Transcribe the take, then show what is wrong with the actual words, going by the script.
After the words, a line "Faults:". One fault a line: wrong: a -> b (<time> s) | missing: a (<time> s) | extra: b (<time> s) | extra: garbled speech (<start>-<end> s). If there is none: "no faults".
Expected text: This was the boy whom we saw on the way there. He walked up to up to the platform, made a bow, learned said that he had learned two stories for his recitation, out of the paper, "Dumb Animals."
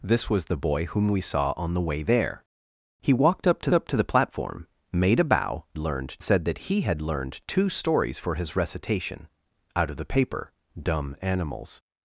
This was the boy whom we saw on the way there. He walked up to up to the platform, made a bow, learned said that he had learned two stories for his recitation, out of the paper, "Dumb Animals."
Faults:
no faults